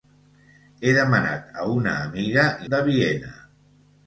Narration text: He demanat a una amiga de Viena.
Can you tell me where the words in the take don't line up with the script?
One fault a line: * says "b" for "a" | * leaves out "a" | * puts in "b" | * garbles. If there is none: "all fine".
all fine